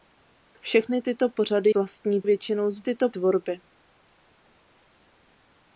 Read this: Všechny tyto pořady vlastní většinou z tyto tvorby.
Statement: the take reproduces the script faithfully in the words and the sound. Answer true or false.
true